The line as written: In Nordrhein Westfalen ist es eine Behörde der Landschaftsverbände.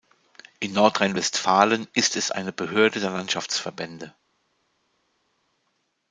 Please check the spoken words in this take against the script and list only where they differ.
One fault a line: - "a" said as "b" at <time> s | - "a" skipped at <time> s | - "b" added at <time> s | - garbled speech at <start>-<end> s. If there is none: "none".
none